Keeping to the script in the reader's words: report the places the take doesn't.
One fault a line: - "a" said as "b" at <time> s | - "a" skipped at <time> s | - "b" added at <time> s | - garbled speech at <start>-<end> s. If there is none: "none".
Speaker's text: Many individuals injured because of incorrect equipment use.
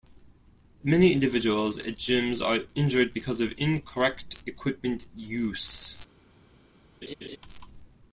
- "at gyms are" added at 1.8 s